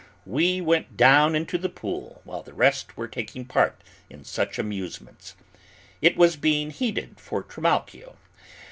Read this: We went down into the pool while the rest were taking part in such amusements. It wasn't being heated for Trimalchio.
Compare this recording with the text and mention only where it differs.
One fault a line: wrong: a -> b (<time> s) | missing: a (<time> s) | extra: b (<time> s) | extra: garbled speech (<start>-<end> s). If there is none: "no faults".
wrong: wasn't -> was (6.1 s)